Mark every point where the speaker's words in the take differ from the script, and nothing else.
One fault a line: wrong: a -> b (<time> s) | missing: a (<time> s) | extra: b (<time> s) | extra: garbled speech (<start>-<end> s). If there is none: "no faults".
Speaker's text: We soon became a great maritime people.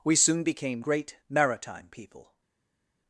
missing: a (0.8 s)